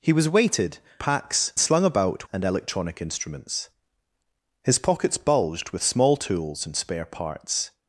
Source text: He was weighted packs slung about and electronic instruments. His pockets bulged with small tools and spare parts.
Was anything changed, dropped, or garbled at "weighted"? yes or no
no